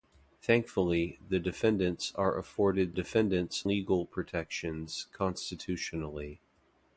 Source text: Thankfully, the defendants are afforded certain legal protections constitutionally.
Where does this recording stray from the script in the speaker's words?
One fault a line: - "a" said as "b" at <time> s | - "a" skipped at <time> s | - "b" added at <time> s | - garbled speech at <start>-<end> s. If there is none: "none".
- "certain" said as "defendants" at 2.9 s